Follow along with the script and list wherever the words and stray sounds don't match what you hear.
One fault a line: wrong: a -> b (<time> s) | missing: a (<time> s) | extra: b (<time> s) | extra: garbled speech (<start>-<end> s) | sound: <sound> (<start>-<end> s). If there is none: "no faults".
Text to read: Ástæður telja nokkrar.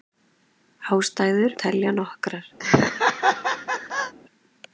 sound: laugh (2.6-4.1 s)